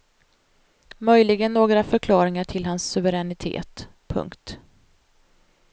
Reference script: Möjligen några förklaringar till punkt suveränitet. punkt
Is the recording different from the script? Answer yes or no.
yes